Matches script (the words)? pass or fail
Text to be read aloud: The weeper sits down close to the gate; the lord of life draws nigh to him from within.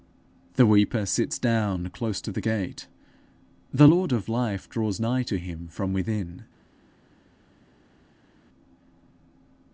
pass